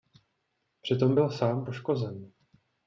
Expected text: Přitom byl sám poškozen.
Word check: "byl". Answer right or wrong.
right